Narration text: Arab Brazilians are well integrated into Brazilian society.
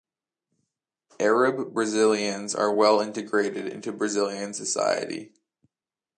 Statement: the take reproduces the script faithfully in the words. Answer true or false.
true